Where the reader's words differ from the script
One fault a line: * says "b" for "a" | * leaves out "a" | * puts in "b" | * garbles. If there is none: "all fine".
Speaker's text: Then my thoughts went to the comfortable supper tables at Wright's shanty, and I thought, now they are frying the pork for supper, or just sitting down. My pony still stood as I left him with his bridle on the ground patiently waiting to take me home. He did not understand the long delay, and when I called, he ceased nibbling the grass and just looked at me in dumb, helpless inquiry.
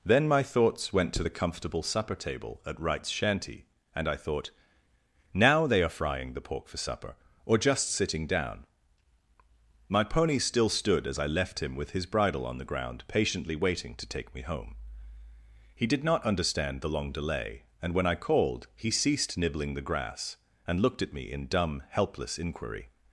* says "table" for "tables"
* leaves out "just"